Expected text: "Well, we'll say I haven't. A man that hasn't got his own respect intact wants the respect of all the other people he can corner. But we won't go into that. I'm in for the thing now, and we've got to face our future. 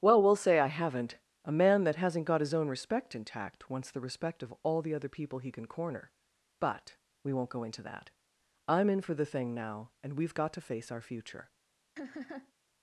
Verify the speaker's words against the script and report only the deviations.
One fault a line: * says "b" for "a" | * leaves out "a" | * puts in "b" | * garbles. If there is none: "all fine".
all fine